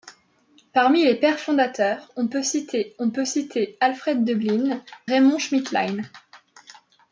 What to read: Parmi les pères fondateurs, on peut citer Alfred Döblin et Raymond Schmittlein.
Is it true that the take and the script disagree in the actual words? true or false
true